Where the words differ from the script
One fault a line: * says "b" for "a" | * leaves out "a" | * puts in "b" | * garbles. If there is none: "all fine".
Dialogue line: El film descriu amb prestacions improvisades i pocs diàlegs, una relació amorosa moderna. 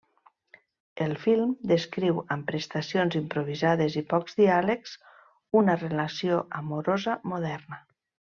all fine